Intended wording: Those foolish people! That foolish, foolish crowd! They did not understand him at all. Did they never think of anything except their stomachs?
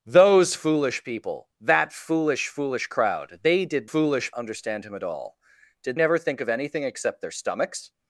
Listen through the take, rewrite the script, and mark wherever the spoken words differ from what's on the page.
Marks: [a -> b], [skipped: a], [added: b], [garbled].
Those foolish people! That foolish, foolish crowd! They did [not -> foolish] understand him at all. Did [skipped: they] never think of anything except their stomachs?